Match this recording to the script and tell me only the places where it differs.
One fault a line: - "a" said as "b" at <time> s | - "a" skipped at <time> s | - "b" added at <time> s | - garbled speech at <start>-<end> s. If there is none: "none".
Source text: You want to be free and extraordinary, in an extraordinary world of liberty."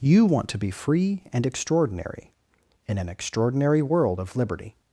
none